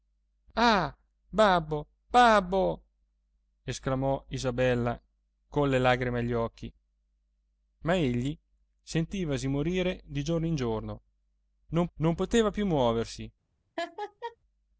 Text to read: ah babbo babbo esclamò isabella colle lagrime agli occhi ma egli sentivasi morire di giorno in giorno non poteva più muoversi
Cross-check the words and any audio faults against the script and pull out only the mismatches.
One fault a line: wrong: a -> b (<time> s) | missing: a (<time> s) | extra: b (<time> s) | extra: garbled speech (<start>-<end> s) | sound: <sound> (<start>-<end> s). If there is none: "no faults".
extra: non (11.9 s)
sound: laugh (13.8-14.4 s)